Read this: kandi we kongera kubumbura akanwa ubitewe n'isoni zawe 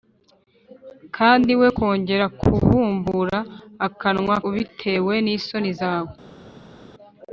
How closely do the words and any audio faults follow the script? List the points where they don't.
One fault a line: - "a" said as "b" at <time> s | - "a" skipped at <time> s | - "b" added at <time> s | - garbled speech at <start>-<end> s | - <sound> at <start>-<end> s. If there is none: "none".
none